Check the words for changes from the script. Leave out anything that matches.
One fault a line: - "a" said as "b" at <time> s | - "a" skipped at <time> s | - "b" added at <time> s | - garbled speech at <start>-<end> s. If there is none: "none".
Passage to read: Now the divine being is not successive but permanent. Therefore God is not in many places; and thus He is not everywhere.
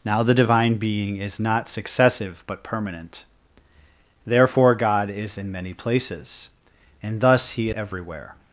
- "not" skipped at 5.4 s
- "is not" skipped at 7.7 s